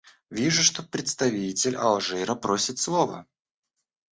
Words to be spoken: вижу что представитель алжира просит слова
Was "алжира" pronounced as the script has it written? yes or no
yes